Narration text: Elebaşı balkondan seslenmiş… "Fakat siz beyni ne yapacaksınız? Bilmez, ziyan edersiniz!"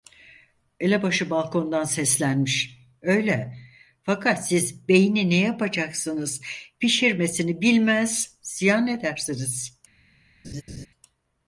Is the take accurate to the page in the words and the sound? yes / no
no